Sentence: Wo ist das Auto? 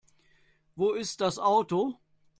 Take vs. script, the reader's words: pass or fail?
pass